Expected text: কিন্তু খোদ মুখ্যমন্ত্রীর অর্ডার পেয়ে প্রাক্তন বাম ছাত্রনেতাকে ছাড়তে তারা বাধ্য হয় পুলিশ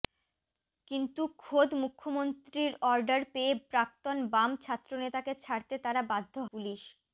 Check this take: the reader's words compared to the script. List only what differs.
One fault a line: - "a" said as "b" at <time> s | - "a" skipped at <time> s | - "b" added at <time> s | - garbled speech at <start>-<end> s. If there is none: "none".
- "হয়" skipped at 6.3 s